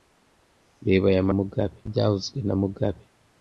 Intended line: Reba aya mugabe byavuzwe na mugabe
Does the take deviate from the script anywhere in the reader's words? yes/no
no